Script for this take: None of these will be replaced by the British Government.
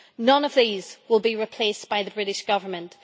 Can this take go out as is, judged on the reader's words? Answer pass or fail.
pass